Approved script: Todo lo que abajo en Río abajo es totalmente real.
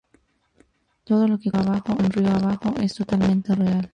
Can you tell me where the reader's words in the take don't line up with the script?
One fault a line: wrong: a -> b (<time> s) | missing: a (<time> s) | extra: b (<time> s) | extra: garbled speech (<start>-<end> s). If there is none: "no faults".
no faults